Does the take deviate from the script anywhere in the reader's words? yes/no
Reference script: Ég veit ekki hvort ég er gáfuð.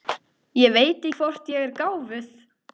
yes